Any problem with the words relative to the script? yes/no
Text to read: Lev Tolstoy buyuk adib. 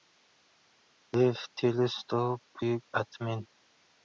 no